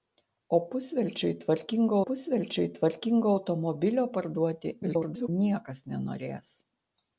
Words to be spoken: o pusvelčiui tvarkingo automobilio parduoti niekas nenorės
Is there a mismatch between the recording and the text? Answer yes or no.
yes